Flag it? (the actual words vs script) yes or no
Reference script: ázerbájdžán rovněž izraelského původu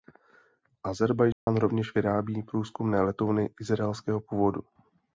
yes